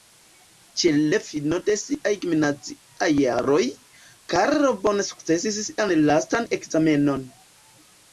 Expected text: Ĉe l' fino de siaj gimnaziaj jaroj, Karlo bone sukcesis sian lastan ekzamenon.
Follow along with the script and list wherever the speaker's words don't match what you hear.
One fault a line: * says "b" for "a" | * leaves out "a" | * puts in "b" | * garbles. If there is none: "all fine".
all fine